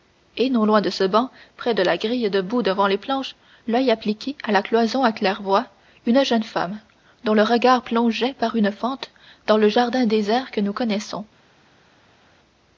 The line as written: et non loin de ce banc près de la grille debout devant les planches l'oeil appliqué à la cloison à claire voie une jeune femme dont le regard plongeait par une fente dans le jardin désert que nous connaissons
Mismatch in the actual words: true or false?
false